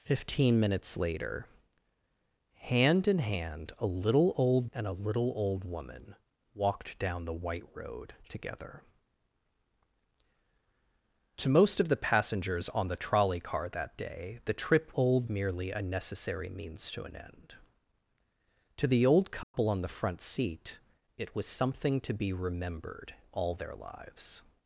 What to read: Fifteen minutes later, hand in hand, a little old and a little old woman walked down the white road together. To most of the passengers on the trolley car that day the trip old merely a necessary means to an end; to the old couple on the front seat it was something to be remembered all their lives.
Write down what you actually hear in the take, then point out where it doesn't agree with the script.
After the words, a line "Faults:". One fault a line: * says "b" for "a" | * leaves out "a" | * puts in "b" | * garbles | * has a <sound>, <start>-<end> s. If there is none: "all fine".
Fifteen minutes later, hand in hand, a little old and a little old woman walked down the white road together. To most of the passengers on the trolley car that day the trip old merely a necessary means to an end; to the old couple on the front seat it was something to be remembered all their lives.
Faults:
* has a dropout, 19.4-19.5 s